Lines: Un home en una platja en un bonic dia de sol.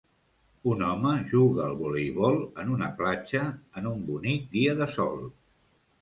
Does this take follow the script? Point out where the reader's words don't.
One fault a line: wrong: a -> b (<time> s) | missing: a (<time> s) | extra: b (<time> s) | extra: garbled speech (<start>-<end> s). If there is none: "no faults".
extra: juga al voleibol (1.3 s)